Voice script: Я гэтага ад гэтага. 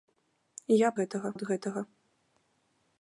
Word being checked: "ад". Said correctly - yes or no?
yes